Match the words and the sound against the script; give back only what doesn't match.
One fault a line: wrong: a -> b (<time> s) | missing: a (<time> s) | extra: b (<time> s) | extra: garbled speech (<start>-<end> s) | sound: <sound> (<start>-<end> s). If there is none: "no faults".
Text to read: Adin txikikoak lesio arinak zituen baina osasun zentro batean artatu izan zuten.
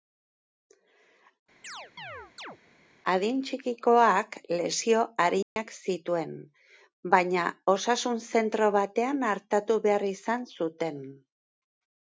sound: chirp (1.6-2.6 s)
sound: dropout (5.4-5.6 s)
extra: behar (9.9 s)